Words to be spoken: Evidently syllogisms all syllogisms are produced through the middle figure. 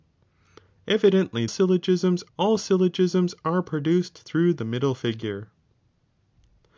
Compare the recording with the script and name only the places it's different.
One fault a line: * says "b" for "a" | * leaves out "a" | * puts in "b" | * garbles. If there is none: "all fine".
all fine